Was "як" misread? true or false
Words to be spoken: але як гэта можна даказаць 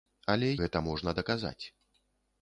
true